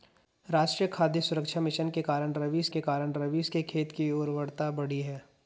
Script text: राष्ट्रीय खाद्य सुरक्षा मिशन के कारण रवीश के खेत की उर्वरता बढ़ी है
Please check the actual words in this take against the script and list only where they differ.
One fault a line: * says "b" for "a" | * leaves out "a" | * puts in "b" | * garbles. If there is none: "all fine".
* puts in "कारण रवीश के"